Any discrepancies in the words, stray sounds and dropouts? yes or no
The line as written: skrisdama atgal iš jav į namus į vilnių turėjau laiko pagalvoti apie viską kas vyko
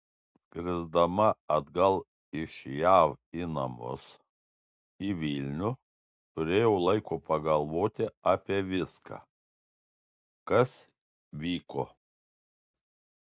no